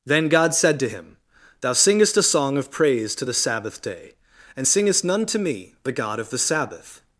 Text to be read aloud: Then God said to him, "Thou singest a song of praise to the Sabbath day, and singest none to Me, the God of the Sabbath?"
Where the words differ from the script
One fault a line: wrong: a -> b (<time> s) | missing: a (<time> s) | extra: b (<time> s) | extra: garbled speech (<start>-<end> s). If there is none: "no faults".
no faults